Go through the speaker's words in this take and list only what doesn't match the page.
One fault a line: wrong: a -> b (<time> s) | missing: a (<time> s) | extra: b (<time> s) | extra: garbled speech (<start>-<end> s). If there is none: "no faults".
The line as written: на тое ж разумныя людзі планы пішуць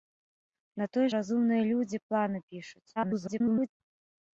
missing: ж (1.0 s)
extra: garbled speech (3.0-3.7 s)